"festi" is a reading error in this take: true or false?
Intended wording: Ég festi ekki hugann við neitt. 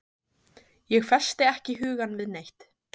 false